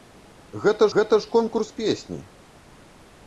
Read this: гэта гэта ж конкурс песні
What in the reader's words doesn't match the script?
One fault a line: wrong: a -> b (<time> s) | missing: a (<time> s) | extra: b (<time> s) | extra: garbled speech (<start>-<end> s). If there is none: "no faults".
no faults